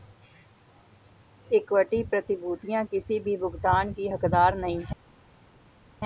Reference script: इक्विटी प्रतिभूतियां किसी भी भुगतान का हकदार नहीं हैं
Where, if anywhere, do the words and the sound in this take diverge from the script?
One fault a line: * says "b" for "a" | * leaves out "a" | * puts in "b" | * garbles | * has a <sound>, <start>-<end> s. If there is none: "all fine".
* says "की" for "का"